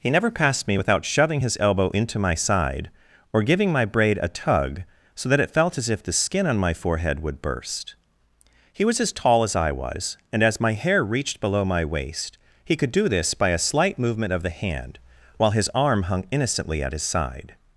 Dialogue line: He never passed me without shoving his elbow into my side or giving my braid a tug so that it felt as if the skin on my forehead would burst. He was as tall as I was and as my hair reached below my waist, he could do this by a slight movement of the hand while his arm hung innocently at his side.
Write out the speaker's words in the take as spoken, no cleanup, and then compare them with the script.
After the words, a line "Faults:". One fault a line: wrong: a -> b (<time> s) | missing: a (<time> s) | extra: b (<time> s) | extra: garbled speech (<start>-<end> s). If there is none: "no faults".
He never passed me without shoving his elbow into my side or giving my braid a tug so that it felt as if the skin on my forehead would burst. He was as tall as I was and as my hair reached below my waist, he could do this by a slight movement of the hand while his arm hung innocently at his side.
Faults:
no faults